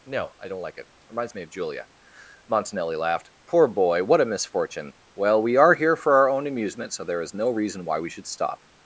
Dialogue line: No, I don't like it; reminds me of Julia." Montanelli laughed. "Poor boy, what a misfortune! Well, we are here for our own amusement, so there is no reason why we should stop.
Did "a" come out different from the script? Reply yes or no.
no